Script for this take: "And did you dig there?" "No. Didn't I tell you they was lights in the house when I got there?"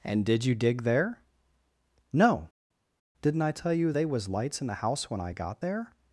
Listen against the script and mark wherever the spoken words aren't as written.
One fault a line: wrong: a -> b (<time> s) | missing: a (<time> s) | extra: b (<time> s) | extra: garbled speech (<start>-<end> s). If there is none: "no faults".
no faults